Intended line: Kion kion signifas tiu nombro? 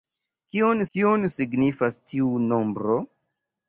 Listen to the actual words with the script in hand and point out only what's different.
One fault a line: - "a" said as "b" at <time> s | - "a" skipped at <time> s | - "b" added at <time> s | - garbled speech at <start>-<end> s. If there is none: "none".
none